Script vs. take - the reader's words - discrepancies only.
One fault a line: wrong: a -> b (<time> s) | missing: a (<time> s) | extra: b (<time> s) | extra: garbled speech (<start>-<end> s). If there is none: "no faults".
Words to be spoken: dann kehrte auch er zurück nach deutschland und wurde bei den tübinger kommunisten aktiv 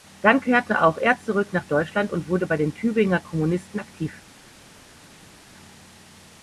no faults